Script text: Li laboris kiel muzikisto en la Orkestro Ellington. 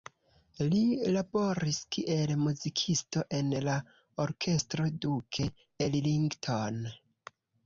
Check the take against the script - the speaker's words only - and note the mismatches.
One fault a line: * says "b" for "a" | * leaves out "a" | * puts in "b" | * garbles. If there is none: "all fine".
* puts in "Duke"